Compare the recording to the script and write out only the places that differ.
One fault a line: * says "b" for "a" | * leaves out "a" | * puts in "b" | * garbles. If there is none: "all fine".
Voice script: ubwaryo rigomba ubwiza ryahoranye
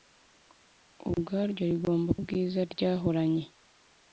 all fine